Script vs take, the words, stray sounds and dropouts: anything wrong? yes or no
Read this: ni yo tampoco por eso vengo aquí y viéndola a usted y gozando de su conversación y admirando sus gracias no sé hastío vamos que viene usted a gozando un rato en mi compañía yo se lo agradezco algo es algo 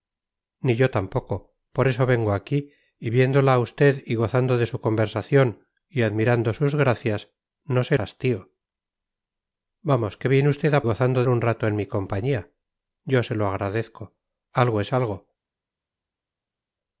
no